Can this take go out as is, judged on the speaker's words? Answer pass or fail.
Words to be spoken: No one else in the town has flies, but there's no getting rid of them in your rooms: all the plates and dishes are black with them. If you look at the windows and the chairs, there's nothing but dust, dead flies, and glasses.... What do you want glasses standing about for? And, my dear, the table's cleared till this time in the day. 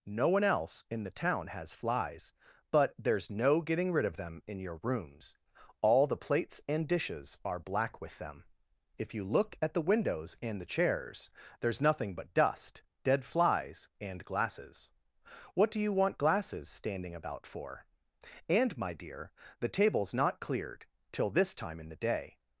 fail